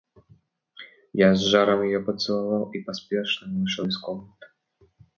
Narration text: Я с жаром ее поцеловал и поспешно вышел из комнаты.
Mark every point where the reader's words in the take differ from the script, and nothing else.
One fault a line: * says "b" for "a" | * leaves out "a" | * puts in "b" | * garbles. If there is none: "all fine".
all fine